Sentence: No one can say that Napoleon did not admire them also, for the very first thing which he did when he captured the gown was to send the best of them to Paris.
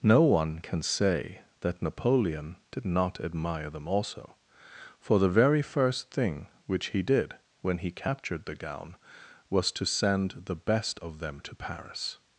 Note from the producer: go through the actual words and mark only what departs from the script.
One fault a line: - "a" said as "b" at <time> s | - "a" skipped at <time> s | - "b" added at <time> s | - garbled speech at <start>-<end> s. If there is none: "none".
none